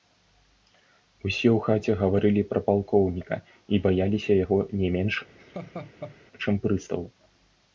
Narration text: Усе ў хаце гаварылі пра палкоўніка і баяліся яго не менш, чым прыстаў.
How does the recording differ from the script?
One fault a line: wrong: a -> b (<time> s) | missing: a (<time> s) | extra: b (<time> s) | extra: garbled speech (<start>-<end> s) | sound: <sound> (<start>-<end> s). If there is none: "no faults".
sound: laugh (5.4-6.2 s)